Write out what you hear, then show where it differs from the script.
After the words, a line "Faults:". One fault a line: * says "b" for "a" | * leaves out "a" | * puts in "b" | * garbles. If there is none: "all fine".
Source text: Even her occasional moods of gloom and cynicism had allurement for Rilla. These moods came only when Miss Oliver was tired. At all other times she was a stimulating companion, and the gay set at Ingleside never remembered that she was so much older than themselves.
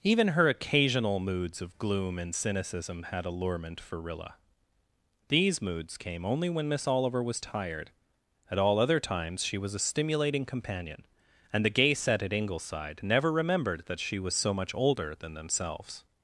Even her occasional moods of gloom and cynicism had allurement for Rilla. These moods came only when Miss Oliver was tired. At all other times she was a stimulating companion, and the gay set at Ingleside never remembered that she was so much older than themselves.
Faults:
all fine